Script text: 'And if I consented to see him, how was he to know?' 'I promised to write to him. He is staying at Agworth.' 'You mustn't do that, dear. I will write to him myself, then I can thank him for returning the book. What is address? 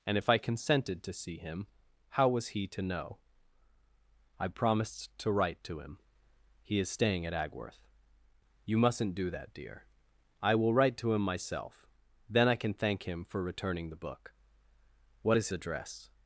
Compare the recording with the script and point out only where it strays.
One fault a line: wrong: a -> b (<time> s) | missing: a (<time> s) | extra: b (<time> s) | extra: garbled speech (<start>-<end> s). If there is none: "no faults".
no faults